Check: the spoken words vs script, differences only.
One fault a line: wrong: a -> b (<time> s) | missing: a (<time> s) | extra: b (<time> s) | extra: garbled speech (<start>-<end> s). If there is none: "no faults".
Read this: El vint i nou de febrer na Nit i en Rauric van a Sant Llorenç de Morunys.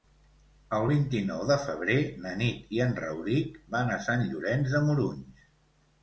no faults